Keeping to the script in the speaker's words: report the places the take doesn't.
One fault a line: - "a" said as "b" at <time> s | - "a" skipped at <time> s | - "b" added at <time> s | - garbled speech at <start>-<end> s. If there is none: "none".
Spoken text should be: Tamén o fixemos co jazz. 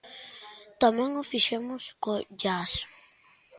none